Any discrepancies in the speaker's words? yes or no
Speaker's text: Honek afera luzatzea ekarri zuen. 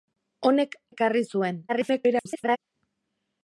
yes